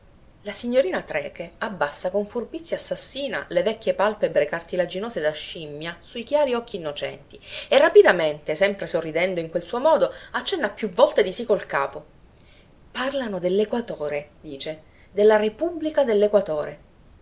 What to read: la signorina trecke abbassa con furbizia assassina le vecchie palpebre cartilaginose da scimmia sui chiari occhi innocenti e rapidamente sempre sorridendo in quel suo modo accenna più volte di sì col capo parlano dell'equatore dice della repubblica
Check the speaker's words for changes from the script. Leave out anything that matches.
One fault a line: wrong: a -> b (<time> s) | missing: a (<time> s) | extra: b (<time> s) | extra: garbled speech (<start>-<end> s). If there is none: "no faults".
no faults